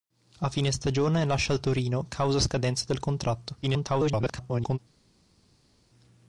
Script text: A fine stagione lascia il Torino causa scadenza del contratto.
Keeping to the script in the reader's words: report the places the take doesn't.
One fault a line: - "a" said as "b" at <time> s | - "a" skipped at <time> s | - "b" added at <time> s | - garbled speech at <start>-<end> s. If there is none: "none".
- garbled speech at 3.6-4.8 s